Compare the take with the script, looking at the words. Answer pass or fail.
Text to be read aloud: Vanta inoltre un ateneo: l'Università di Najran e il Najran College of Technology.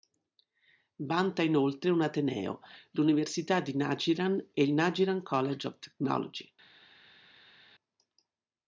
pass